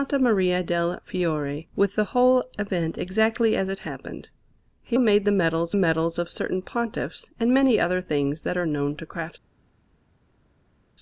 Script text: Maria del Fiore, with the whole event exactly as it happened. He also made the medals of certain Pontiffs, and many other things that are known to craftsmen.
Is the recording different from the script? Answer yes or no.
yes